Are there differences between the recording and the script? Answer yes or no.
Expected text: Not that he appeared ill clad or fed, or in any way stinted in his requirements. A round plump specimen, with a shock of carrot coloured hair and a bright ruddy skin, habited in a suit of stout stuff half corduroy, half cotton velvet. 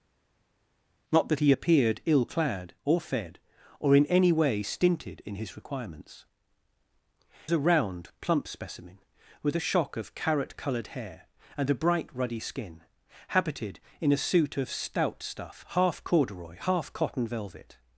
no